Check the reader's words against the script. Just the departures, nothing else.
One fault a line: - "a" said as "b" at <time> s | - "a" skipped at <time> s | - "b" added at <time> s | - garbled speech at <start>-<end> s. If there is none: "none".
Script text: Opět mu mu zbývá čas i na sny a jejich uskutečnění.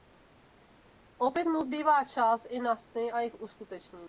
- "mu" skipped at 1.6 s